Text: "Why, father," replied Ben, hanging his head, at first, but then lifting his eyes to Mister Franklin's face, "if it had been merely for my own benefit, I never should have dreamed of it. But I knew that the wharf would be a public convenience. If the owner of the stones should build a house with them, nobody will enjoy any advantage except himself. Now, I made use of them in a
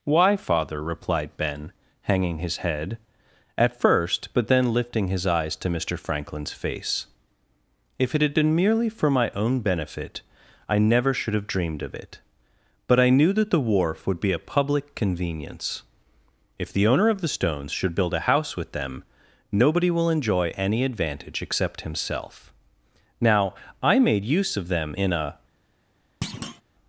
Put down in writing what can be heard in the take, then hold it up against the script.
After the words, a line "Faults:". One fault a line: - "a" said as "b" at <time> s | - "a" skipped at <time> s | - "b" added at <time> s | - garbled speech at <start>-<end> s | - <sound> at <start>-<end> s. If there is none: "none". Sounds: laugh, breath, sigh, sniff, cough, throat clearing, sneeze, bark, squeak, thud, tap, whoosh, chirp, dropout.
"Why, father," replied Ben, hanging his head, at first, but then lifting his eyes to Mister Franklin's face, "if it had been merely for my own benefit, I never should have dreamed of it. But I knew that the wharf would be a public convenience. If the owner of the stones should build a house with them, nobody will enjoy any advantage except himself. Now, I made use of them in a
Faults:
- thud at 26.2-26.6 s